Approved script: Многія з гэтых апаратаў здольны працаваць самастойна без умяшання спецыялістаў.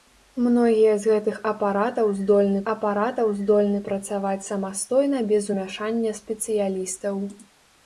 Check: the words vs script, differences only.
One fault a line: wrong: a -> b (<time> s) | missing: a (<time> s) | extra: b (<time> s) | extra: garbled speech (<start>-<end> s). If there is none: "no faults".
extra: апаратаў здольны (2.7 s)